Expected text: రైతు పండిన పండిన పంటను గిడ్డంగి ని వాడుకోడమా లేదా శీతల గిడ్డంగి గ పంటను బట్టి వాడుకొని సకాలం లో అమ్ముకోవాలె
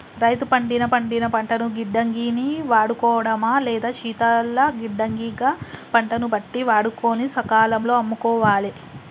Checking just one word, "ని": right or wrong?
right